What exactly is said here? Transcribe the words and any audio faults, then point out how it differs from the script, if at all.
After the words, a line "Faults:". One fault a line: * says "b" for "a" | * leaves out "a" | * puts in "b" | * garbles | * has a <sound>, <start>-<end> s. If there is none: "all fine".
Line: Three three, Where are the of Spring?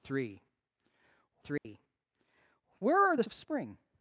Three three, Where are the of Spring?
Faults:
* has a dropout, 1.6-1.7 s